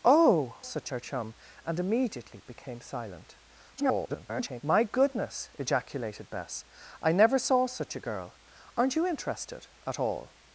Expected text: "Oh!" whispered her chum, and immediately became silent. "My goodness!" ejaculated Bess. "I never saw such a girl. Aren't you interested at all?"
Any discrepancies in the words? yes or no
yes